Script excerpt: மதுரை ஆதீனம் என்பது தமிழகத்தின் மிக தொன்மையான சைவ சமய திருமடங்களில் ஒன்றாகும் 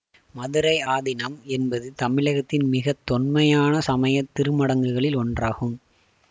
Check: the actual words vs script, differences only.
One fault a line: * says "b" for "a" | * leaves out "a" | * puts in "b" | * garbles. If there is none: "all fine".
* leaves out "சைவ"